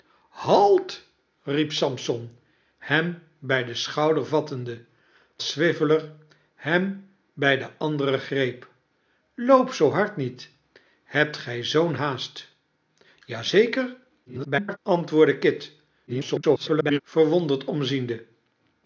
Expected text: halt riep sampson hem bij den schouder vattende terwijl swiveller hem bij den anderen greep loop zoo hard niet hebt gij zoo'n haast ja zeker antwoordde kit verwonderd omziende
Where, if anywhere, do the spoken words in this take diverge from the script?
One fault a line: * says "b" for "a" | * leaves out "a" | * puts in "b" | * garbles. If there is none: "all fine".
* leaves out "terwijl"
* garbles
* garbles